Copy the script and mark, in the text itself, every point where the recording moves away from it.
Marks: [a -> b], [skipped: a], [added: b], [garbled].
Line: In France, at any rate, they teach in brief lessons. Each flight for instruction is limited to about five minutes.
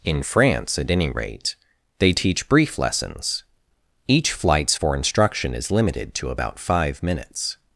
In France, at any rate, they teach [skipped: in] brief lessons. Each [flight -> flights] for instruction is limited to about five minutes.